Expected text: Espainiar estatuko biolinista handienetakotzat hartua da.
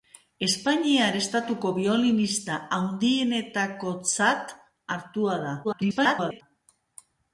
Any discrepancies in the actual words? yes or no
yes